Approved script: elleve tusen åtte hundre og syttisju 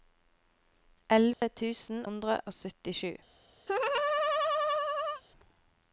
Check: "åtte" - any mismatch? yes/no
yes